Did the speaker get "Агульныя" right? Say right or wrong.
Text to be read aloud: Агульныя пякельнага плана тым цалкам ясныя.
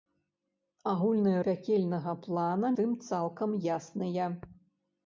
right